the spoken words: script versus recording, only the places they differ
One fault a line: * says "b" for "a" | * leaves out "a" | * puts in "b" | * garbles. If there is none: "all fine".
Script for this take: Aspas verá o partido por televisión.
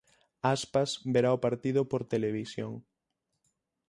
all fine